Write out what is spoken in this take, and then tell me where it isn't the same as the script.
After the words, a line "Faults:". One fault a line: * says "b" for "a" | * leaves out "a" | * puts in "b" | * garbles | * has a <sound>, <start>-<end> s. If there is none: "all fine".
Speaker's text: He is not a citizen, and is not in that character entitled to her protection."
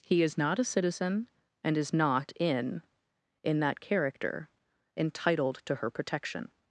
He is not a citizen, and is not in in that character entitled to her protection."
Faults:
* puts in "in"